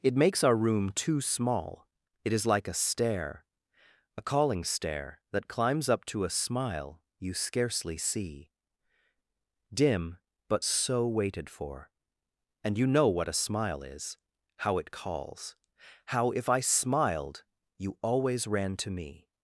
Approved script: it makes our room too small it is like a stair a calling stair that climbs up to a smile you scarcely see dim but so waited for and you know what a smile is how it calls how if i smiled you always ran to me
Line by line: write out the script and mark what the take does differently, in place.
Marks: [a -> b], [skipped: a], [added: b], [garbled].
it makes our room too small it is like a stair a calling stair that climbs up to a smile you scarcely see dim but so waited for and you know what a smile is how it calls how if i smiled you always ran to me